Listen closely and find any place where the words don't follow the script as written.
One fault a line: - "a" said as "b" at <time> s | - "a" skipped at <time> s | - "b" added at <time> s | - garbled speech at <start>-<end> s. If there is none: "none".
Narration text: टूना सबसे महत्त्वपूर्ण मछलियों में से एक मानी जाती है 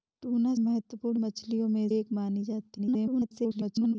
- "सबसे" skipped at 0.5 s
- "से" skipped at 1.9 s
- garbled speech at 2.8-4.0 s